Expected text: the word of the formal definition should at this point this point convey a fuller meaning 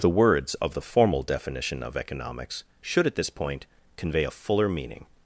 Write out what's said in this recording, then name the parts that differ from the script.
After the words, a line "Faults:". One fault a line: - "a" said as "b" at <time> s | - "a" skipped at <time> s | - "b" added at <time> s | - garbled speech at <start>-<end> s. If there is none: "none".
the words of the formal definition of economics should at this point convey a fuller meaning
Faults:
- "word" said as "words" at 0.1 s
- "of economics" added at 1.8 s
- "this point" skipped at 3.7 s